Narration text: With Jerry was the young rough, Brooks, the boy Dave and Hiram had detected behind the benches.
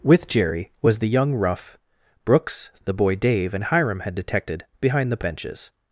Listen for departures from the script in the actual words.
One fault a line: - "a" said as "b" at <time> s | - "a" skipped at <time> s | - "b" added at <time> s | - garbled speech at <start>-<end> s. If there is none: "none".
none